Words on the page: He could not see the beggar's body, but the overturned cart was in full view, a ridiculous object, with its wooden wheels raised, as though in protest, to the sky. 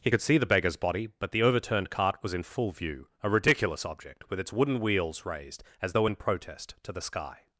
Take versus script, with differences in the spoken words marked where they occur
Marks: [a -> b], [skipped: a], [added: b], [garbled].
He could [skipped: not] see the beggar's body, but the overturned cart was in full view, a ridiculous object, with its wooden wheels raised, as though in protest, to the sky.